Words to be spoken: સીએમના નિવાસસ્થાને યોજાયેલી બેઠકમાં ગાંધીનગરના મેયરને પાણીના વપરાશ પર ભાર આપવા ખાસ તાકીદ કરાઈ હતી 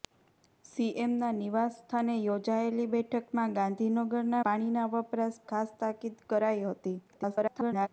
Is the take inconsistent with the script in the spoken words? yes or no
yes